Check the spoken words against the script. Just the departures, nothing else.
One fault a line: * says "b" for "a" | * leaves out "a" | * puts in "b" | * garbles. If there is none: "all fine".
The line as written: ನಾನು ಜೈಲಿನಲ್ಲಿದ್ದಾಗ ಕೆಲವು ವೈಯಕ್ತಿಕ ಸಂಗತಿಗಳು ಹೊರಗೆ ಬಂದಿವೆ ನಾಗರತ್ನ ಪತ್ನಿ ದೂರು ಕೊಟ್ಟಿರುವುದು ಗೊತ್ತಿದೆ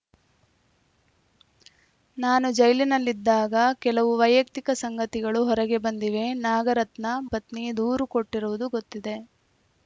all fine